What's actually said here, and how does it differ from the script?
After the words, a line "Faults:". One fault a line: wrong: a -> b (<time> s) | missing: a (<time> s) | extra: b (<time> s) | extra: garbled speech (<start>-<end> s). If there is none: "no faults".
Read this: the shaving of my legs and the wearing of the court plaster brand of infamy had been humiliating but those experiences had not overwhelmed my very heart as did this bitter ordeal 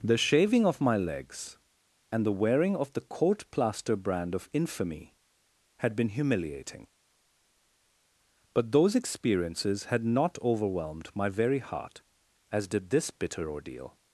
the shaving of my legs and the wearing of the court plaster brand of infamy had been humiliating but those experiences had not overwhelmed my very heart as did this bitter ordeal
Faults:
no faults